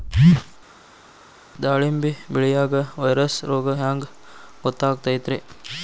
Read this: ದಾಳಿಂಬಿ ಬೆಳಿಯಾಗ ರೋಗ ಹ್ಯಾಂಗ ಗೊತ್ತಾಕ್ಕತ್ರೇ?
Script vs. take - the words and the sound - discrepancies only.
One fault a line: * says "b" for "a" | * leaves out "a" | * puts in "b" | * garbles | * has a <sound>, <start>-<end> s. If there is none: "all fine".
* puts in "ವೈರಸ್"